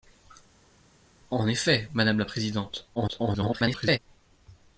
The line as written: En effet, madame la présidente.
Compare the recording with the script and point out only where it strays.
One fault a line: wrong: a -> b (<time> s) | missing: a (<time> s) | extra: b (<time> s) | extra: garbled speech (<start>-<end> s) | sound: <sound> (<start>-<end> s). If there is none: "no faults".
extra: garbled speech (3.0-4.0 s)